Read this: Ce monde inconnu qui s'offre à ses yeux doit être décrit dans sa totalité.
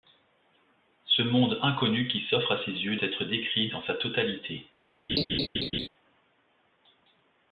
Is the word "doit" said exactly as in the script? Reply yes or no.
no